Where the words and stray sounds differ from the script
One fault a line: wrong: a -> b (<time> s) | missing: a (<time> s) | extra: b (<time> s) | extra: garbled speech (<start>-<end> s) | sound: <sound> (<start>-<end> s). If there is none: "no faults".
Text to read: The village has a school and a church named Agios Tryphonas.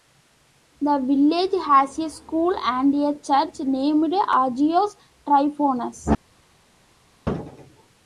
no faults